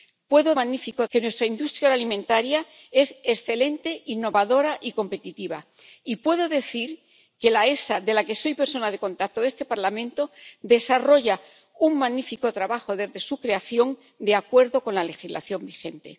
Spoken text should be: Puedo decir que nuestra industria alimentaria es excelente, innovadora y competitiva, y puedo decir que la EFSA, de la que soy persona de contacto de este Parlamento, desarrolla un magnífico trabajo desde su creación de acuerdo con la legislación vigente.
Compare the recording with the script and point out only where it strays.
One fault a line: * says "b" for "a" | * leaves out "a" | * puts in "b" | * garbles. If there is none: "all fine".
* says "magnífico" for "decir"